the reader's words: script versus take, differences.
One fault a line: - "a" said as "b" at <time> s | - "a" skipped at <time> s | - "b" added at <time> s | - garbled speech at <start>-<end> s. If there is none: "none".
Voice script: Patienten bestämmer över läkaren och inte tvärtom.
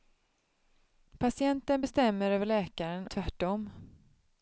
- "och inte" skipped at 3.1 s